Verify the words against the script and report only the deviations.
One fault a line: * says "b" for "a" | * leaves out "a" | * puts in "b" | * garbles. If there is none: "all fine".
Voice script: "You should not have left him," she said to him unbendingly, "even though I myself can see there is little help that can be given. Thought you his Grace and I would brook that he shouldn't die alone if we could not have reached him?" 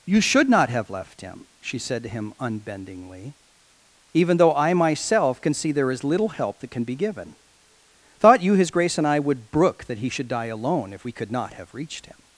* says "should" for "shouldn't"